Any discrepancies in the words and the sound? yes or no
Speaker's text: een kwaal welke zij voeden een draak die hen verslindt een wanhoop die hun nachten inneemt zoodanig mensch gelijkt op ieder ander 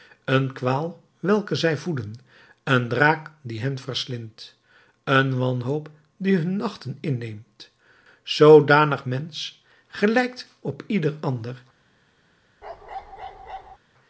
yes